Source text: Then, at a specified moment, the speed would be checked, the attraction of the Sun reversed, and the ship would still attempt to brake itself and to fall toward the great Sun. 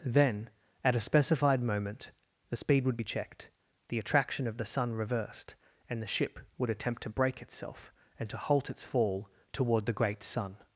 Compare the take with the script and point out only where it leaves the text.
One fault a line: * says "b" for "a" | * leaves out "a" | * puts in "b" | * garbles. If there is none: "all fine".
* leaves out "still"
* puts in "halt its"